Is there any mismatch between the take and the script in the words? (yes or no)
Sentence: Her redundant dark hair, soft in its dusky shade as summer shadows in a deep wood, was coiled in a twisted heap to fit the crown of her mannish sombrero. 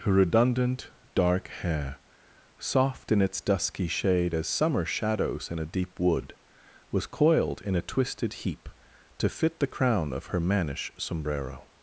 no